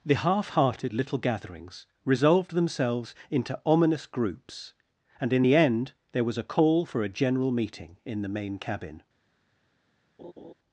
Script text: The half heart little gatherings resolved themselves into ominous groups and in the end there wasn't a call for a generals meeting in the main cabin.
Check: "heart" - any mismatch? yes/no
yes